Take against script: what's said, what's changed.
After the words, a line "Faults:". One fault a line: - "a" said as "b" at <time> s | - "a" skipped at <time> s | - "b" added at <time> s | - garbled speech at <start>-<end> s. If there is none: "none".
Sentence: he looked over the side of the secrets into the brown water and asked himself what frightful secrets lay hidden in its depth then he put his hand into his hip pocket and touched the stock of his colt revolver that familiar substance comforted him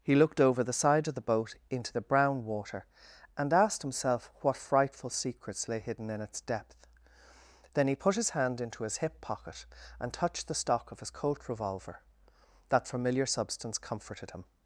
he looked over the side of the boat into the brown water and asked himself what frightful secrets lay hidden in its depth then he put his hand into his hip pocket and touched the stock of his colt revolver that familiar substance comforted him
Faults:
- "secrets" said as "boat" at 1.2 s